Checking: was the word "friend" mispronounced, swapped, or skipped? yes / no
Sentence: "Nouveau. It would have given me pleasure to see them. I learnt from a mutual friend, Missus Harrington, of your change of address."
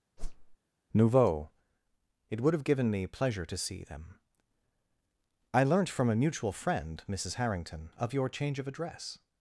no